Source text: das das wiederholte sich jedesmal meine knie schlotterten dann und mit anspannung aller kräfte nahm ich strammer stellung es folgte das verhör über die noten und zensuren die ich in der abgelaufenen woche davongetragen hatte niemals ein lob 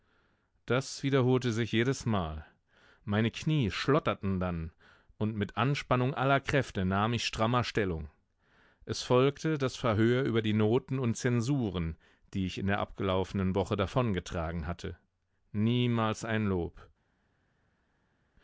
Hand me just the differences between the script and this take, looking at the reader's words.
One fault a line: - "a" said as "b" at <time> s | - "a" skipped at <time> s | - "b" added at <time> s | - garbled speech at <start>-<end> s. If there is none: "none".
- "das" skipped at 1.0 s